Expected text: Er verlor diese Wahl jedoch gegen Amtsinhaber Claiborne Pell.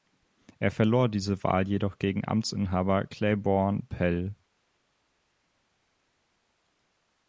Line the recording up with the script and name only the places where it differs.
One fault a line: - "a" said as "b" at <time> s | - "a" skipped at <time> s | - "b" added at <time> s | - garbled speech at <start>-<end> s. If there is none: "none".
none